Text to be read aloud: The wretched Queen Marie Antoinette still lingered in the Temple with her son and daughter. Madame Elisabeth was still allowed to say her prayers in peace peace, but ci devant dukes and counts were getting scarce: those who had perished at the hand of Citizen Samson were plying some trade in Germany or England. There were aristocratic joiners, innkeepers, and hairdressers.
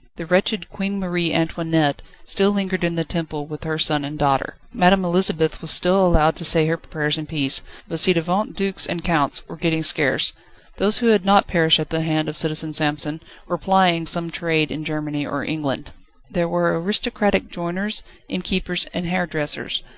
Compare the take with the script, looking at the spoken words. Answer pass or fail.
fail